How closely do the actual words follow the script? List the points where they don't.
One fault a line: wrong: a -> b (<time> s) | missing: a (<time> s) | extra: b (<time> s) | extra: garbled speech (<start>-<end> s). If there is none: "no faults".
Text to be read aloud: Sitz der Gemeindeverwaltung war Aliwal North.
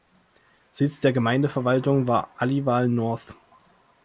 no faults